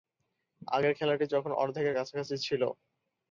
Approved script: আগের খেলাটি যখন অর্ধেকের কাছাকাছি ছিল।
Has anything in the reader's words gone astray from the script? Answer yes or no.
no